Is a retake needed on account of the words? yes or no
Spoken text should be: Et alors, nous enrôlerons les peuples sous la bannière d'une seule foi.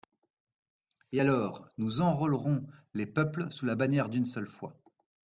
no